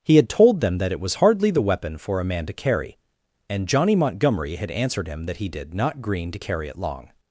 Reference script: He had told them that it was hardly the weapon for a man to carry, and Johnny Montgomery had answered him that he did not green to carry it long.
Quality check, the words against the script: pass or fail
pass